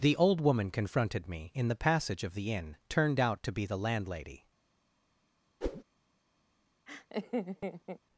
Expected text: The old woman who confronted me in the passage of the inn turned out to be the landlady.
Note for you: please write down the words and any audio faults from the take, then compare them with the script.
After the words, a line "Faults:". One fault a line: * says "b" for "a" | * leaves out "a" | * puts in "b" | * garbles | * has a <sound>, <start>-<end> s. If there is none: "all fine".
The old woman confronted me in the passage of the inn turned out to be the landlady.
Faults:
* leaves out "who"
* has a whoosh, 5.6-5.8 s
* has a laugh, 6.9-8.0 s